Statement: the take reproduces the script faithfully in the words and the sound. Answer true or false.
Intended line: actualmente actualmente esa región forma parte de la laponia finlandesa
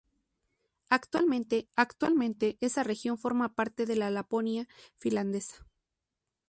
true